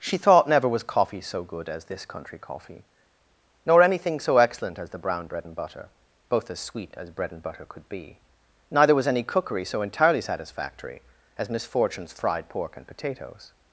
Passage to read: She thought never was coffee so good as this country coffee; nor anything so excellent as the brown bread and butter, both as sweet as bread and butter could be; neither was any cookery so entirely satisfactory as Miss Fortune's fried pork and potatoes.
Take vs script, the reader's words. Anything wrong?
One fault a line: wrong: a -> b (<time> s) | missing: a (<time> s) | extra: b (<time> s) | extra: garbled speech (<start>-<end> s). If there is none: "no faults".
no faults